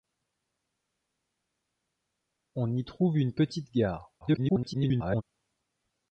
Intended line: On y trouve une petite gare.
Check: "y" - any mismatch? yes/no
no